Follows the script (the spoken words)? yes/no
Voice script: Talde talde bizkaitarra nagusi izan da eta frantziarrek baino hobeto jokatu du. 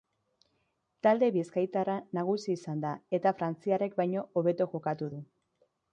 no